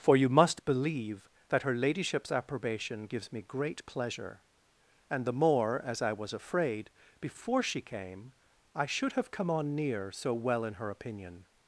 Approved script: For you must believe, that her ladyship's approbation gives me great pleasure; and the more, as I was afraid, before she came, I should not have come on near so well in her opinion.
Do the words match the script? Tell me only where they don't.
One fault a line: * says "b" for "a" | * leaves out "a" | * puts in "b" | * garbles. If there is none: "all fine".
* leaves out "not"